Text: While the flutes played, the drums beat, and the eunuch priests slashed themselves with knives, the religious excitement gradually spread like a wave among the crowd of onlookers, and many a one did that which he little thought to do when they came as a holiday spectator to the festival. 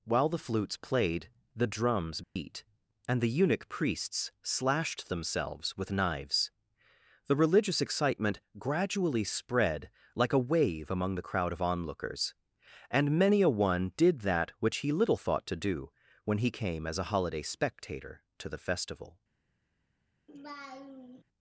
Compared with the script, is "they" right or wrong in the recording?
wrong